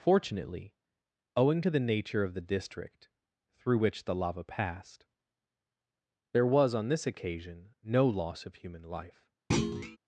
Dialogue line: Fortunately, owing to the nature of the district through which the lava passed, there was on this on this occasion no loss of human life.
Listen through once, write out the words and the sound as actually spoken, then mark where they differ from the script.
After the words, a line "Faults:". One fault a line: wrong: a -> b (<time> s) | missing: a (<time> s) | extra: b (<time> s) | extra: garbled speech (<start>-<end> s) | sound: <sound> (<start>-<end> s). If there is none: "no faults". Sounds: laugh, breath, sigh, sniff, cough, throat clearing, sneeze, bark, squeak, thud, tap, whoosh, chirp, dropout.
Fortunately, owing to the nature of the district through which the lava passed, there was on this occasion no loss of human life.
Faults:
missing: on this (7.1 s)
sound: thud (9.5-10.0 s)